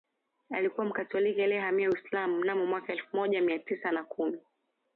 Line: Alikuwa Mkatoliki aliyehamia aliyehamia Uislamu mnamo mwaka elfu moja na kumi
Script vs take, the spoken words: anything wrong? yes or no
yes